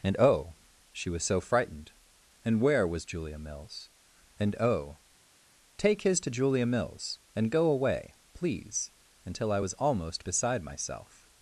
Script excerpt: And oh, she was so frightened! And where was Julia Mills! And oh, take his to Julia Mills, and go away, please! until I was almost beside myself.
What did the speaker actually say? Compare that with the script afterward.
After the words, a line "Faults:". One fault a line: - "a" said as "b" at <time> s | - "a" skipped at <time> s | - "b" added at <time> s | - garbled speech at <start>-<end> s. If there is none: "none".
And oh, she was so frightened! And where was Julia Mills! And oh, take his to Julia Mills, and go away, please! until I was almost beside myself.
Faults:
none